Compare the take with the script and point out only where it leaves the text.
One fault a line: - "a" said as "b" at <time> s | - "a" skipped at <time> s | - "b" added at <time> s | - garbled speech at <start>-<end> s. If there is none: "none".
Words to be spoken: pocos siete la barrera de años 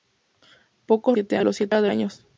none